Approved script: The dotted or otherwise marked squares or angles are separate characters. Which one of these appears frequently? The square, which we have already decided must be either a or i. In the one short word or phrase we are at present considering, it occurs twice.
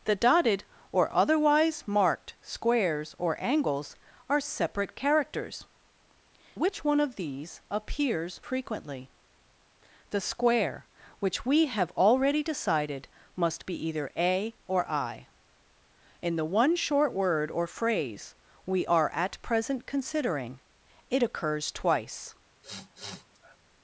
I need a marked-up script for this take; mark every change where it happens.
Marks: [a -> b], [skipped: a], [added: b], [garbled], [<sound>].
The dotted or otherwise marked squares or angles are separate characters. Which one of these appears frequently? The square, which we have already decided must be either a or i. In the one short word or phrase we are at present considering, it occurs twice. [sniff]